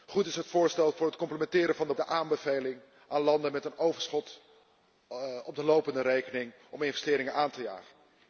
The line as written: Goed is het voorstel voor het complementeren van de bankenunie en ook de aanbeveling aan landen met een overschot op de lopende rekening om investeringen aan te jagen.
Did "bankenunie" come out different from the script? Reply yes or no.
yes